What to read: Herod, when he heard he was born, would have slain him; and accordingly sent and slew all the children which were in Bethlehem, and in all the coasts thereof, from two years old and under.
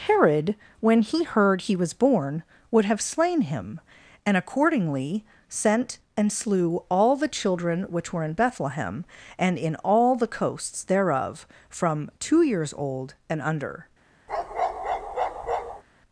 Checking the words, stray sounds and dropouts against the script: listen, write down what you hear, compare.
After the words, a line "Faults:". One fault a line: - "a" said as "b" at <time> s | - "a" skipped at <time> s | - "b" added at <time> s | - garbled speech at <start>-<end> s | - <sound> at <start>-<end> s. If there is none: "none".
Herod, when he heard he was born, would have slain him; and accordingly sent and slew all the children which were in Bethlehem, and in all the coasts thereof, from two years old and under.
Faults:
- bark at 14.3-15.8 s